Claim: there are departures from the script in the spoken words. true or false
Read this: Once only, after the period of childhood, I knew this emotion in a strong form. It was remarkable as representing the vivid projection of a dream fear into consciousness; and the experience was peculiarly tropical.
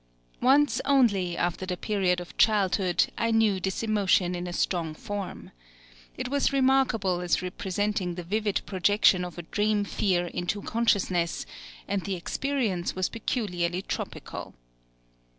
false